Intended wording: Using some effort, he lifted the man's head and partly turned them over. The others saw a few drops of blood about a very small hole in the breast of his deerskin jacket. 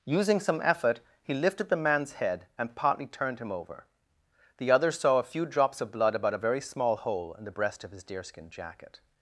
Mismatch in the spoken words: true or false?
true